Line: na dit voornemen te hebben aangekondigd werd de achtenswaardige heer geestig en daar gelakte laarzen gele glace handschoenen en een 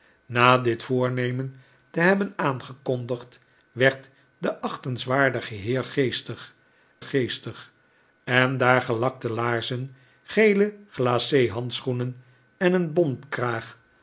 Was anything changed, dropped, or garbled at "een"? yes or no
no